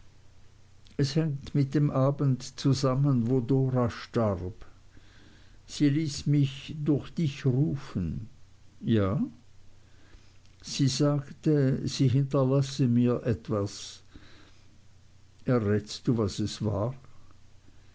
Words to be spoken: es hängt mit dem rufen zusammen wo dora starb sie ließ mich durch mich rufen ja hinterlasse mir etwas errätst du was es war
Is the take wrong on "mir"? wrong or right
right